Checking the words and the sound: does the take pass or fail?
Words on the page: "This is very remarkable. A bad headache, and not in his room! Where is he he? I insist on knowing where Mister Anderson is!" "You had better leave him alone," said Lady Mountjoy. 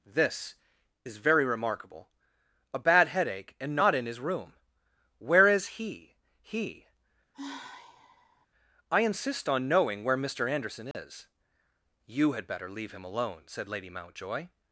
fail